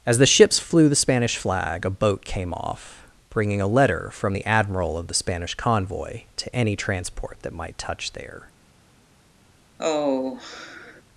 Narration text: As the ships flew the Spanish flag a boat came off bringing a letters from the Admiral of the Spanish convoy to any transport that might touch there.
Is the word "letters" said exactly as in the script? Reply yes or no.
no